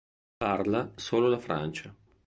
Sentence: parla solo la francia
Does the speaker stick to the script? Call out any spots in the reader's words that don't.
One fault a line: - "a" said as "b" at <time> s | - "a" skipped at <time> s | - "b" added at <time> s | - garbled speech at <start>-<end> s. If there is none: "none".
none